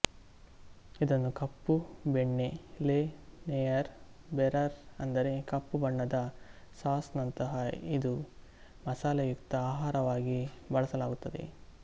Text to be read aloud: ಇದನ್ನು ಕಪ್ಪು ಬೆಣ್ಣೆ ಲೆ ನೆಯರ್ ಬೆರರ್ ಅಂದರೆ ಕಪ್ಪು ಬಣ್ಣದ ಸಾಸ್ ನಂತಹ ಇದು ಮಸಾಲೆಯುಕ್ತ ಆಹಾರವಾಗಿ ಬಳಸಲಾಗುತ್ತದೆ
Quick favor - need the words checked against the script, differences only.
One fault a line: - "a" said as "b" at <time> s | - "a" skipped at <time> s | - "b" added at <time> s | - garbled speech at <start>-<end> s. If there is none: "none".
none